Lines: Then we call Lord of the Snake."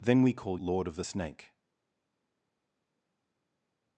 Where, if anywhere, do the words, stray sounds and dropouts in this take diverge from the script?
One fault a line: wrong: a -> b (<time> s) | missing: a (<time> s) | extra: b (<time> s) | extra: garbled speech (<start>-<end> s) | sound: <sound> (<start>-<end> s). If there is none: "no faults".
no faults